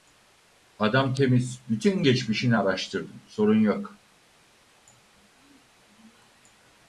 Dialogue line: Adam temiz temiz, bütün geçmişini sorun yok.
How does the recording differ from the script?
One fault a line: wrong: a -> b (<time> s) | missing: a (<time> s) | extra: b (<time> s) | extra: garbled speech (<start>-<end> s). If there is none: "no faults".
missing: temiz (1.6 s)
extra: araştırdım (2.5 s)